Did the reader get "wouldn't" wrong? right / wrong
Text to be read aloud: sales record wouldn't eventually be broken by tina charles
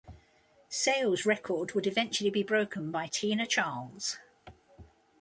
wrong